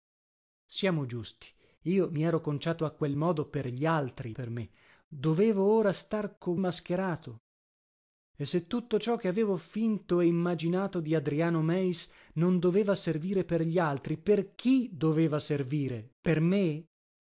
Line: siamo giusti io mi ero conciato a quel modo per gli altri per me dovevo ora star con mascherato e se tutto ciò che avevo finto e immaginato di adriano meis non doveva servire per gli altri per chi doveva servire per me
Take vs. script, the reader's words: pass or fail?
pass